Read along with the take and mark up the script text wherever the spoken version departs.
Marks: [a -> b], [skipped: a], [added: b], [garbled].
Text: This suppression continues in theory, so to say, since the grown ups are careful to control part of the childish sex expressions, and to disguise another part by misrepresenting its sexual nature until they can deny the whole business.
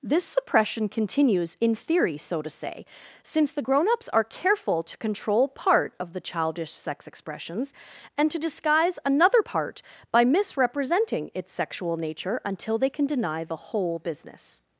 This suppression continues in theory, so to say, since the grown ups are careful to control part of the childish sex expressions, and to disguise another part by misrepresenting its sexual nature until they can deny the whole business.